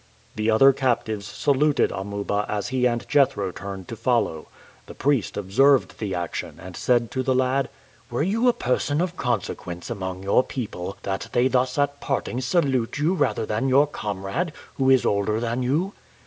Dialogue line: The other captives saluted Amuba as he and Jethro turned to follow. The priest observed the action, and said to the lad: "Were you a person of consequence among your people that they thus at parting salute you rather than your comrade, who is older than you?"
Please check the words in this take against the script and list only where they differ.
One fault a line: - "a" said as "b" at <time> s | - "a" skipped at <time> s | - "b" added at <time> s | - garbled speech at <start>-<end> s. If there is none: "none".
none